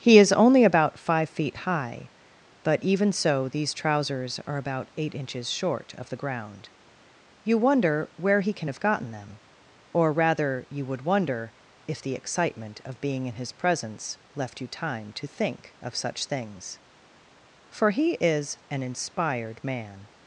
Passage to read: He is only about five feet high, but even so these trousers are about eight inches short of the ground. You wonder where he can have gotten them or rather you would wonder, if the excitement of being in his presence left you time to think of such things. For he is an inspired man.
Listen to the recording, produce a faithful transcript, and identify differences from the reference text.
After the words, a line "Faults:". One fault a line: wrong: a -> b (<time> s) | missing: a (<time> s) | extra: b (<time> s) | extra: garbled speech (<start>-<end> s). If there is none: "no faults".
He is only about five feet high, but even so these trousers are about eight inches short of the ground. You wonder where he can have gotten them or rather you would wonder, if the excitement of being in his presence left you time to think of such things. For he is an inspired man.
Faults:
no faults